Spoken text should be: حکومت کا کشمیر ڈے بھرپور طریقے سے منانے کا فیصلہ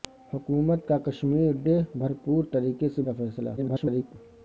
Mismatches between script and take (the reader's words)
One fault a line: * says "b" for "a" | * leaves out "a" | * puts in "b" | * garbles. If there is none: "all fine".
* leaves out "منانے"
* garbles